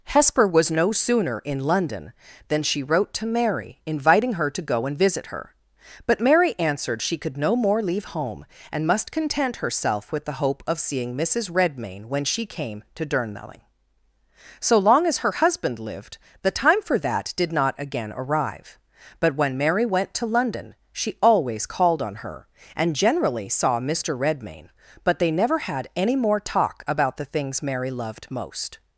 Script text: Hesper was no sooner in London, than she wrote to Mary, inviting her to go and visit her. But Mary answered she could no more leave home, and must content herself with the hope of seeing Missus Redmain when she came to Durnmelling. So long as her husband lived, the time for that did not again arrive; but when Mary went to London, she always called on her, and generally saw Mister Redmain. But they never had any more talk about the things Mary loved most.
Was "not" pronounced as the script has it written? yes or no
yes